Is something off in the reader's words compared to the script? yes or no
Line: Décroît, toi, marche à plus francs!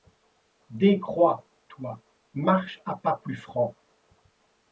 yes